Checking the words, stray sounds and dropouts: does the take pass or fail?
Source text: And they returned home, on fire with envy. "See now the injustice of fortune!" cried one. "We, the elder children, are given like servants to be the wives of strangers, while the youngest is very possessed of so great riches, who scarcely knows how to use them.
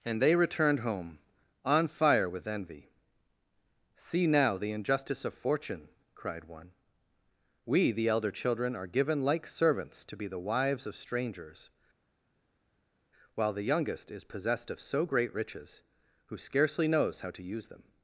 fail